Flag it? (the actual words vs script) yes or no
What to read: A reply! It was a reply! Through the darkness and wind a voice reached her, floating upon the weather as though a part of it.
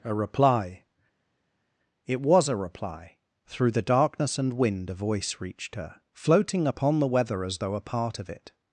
no